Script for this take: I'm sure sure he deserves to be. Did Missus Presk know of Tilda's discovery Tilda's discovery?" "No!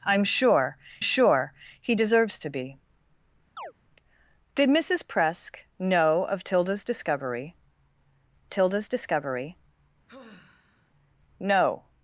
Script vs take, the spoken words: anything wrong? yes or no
no